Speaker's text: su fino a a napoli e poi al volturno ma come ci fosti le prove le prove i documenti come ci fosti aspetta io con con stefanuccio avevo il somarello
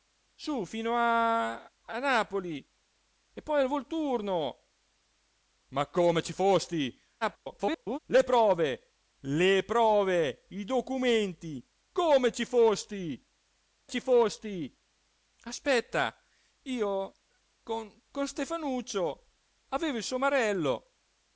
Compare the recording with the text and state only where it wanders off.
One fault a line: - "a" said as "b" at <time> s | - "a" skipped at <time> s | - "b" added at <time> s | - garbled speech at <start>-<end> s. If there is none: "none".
- garbled speech at 7.2-8.0 s
- "ci fosti" added at 13.9 s